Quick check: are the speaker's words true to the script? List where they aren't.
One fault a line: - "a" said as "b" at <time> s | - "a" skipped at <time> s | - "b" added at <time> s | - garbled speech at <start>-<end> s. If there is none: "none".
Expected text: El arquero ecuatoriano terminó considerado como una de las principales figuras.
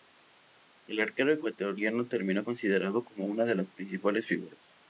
none